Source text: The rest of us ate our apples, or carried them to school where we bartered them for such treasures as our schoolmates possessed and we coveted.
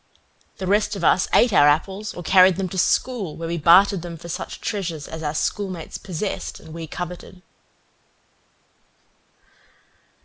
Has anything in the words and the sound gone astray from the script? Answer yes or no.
no